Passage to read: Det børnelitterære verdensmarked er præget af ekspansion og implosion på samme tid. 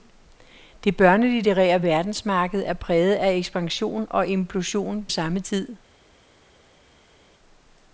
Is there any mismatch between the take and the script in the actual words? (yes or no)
yes